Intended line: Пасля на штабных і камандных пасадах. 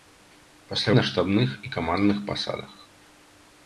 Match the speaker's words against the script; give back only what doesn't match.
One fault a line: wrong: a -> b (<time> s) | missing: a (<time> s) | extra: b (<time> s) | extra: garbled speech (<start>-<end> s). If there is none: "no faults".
no faults